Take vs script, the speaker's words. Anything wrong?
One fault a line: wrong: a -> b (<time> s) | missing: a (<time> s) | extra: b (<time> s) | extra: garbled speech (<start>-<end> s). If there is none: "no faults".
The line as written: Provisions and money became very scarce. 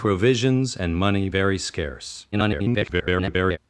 missing: became (1.3 s)
extra: garbled speech (2.3-3.6 s)